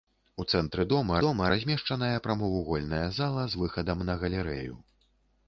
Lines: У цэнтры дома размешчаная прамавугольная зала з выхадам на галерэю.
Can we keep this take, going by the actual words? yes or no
no